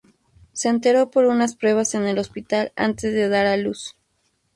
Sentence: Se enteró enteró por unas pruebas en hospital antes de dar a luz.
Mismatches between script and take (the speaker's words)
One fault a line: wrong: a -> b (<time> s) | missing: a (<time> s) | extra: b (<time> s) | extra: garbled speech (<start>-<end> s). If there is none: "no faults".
missing: enteró (1.1 s)
extra: el (2.1 s)